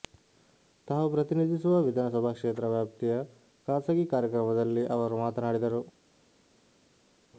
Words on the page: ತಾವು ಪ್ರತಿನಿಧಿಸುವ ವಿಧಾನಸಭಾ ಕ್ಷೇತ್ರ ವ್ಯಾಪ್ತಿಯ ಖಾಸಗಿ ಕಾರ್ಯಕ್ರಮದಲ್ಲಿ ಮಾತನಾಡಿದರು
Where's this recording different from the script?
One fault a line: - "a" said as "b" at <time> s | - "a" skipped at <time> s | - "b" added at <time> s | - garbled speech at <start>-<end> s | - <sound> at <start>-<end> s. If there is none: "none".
- "ಅವರು" added at 4.9 s